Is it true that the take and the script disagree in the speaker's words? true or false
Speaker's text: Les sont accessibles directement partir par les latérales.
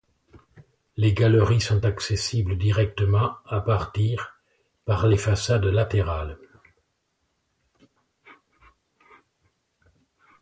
true